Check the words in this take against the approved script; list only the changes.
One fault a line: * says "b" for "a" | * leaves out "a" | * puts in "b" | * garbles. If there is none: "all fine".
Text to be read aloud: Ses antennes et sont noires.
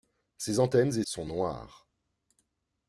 all fine